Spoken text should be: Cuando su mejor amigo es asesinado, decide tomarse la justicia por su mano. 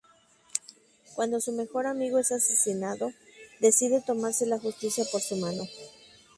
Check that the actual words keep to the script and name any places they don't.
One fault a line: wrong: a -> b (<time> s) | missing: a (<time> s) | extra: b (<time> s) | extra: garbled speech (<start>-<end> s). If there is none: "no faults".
no faults